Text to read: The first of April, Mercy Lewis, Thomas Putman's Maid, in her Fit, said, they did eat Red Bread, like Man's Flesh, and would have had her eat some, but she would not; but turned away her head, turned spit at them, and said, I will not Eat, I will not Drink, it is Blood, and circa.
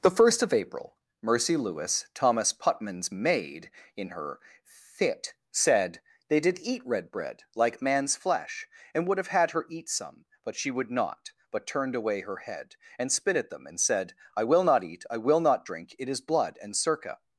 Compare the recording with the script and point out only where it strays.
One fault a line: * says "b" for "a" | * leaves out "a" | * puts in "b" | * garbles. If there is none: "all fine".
* says "and" for "turned"